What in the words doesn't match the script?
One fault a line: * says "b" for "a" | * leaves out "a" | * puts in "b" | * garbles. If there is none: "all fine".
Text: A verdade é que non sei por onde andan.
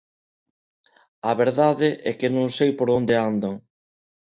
all fine